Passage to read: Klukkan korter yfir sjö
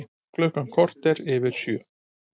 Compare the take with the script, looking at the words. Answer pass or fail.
pass